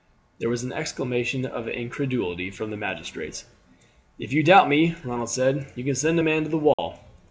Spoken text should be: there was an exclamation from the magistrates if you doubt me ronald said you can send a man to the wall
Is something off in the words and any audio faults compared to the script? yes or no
yes